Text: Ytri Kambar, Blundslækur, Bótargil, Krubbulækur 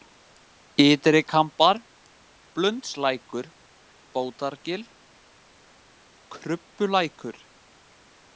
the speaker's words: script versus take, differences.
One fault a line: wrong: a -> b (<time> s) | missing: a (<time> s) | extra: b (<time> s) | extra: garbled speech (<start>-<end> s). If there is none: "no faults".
no faults